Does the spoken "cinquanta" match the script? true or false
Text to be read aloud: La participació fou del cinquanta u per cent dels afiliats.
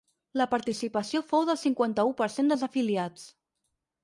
true